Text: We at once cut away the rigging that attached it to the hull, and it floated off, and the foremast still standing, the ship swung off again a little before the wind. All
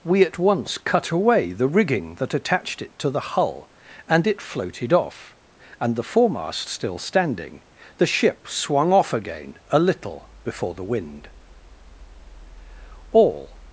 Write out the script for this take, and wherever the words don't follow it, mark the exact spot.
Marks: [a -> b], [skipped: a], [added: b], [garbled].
We at once cut away the rigging that attached it to the hull, and it floated off, and the foremast still standing, the ship swung off again a little before the wind. All